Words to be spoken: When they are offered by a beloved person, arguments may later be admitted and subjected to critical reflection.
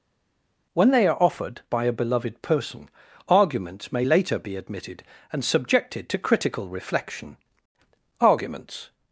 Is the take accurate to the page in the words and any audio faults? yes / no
no